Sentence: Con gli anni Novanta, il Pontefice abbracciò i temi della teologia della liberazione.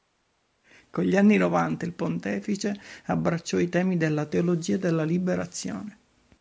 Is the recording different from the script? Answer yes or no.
no